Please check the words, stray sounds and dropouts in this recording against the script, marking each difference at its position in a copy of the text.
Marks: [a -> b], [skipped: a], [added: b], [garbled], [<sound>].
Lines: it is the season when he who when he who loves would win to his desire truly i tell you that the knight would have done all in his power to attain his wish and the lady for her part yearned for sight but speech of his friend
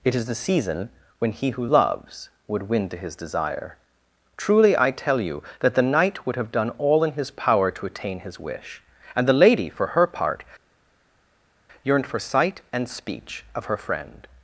it is the season when he who [skipped: when he who] loves would win to his desire truly i tell you that the knight would have done all in his power to attain his wish and the lady for her part yearned for sight [but -> and] speech of [his -> her] friend